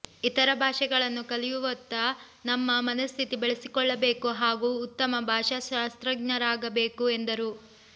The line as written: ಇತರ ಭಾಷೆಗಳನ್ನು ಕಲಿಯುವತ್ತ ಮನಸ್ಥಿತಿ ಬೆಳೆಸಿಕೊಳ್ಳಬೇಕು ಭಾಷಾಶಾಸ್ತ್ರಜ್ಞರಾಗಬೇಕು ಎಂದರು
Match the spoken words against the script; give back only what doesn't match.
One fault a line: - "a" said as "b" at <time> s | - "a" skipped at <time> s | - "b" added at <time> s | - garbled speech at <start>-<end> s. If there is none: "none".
- "ನಮ್ಮ" added at 2.5 s
- "ಹಾಗೂ ಉತ್ತಮ" added at 4.4 s